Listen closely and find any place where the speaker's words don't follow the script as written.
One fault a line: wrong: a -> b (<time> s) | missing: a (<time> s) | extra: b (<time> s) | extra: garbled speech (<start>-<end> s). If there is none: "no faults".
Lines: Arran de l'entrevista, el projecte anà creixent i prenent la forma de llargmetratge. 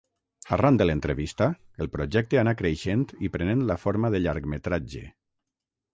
no faults